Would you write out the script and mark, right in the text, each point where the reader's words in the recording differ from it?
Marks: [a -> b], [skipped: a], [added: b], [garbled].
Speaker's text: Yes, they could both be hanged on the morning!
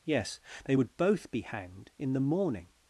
Yes, they [could -> would] both be hanged [on -> in] the morning!